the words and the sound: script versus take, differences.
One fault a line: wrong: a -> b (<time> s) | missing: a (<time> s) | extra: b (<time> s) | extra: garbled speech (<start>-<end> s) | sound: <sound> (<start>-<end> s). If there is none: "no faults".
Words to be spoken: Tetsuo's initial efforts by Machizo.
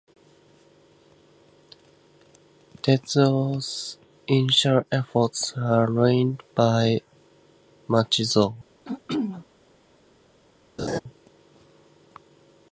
extra: are ruined (5.5 s)
sound: throat clearing (8.8-9.5 s)
sound: laugh (10.8-11.0 s)